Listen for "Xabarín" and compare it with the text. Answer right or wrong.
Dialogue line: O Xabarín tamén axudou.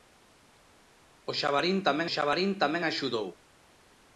right